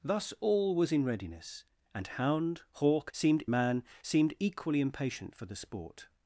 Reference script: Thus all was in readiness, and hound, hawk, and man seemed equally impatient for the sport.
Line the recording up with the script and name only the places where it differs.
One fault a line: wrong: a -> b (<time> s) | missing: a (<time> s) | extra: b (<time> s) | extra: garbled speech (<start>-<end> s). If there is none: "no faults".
wrong: and -> seemed (3.1 s)